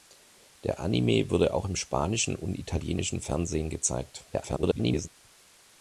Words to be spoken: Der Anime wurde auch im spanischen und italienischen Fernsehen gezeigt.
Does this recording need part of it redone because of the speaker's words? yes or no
yes